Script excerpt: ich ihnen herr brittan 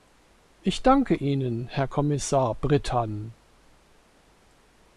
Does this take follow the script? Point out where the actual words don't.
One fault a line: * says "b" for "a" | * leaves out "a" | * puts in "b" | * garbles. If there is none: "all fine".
* puts in "danke"
* puts in "kommissar"